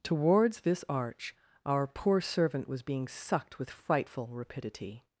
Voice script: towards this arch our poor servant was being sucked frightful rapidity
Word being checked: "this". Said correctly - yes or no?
yes